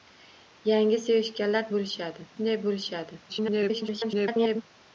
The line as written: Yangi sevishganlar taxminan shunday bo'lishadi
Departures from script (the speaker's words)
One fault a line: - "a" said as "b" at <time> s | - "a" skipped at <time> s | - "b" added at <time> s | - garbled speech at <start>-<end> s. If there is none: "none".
- "taxminan" said as "bo'lishadi" at 1.8 s
- garbled speech at 3.3-4.6 s